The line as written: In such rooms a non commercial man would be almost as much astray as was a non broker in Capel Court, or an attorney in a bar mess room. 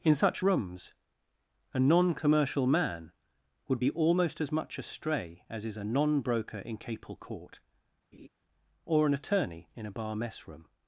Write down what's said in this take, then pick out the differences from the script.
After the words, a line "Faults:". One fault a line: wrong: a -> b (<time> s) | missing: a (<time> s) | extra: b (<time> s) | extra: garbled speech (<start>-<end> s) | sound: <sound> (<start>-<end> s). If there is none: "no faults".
In such rooms a non commercial man would be almost as much astray as is a non broker in Capel Court, or an attorney in a bar mess room.
Faults:
wrong: was -> is (5.6 s)
sound: laugh (8.1-8.3 s)